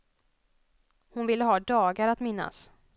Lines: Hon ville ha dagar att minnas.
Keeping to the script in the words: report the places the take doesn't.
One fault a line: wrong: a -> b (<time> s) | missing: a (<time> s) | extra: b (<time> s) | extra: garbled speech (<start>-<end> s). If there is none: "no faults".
no faults